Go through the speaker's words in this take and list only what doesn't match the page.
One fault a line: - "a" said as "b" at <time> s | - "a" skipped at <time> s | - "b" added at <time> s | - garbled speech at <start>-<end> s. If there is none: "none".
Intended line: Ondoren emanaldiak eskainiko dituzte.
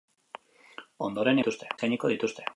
- "emanaldiak" said as "dituzte" at 1.4 s